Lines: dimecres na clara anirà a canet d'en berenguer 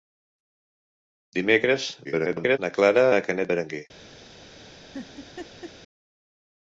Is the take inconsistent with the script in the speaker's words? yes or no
yes